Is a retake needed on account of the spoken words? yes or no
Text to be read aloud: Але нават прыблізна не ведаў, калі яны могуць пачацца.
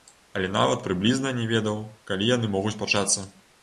no